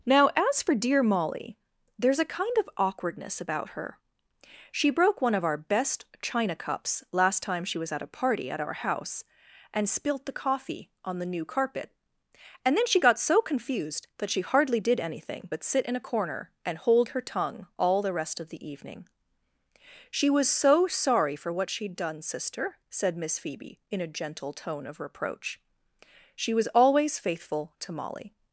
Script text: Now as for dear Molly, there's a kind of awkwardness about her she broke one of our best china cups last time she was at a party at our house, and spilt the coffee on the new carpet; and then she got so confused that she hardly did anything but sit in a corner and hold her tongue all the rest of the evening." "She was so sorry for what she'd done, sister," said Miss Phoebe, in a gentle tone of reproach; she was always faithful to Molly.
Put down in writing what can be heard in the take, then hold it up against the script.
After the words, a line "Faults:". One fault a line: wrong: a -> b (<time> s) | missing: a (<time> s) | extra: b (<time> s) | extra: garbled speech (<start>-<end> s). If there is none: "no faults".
Now as for dear Molly, there's a kind of awkwardness about her she broke one of our best china cups last time she was at a party at our house, and spilt the coffee on the new carpet; and then she got so confused that she hardly did anything but sit in a corner and hold her tongue all the rest of the evening." "She was so sorry for what she'd done, sister," said Miss Phoebe, in a gentle tone of reproach; she was always faithful to Molly.
Faults:
no faults